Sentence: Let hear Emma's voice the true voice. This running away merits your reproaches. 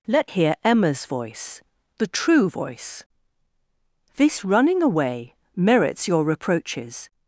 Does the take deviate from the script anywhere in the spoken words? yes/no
no